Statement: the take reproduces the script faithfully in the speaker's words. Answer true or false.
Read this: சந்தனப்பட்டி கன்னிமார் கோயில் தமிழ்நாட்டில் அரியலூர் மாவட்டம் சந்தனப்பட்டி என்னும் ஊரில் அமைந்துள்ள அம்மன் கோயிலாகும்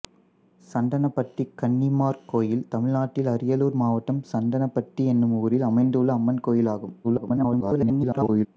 false